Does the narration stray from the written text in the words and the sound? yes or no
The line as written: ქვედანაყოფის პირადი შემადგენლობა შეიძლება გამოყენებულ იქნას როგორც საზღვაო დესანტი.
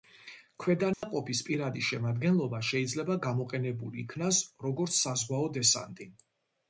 yes